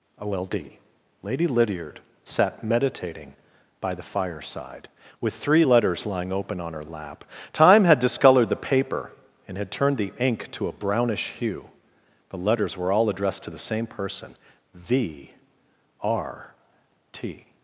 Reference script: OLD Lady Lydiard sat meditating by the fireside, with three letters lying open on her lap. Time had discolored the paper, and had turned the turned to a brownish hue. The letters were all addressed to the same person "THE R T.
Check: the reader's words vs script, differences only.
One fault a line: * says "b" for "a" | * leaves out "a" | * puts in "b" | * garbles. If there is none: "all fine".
* says "ink" for "turned"